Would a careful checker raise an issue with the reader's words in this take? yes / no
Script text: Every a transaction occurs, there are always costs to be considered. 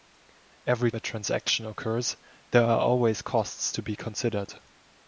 no